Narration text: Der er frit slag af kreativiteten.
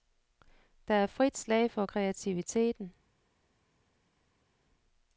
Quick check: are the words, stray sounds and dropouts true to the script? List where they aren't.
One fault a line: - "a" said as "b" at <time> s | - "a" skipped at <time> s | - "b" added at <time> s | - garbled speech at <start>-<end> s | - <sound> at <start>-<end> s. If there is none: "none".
- "af" said as "for" at 1.7 s